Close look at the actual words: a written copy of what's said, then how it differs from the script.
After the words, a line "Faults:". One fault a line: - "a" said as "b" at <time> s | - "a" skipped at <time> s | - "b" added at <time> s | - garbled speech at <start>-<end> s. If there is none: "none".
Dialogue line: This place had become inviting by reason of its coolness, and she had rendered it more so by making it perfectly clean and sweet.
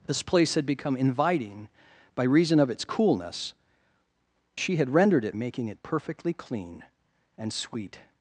This place had become inviting by reason of its coolness, she had rendered it making it perfectly clean and sweet.
Faults:
- "and" skipped at 3.5 s
- "more so by" skipped at 5.4 s